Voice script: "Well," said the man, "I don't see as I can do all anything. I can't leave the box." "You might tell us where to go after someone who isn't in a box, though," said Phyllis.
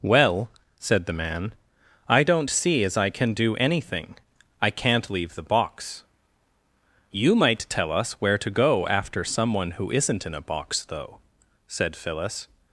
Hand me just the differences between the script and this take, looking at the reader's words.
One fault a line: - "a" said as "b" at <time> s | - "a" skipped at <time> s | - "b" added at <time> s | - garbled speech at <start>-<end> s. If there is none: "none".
- "all" skipped at 3.6 s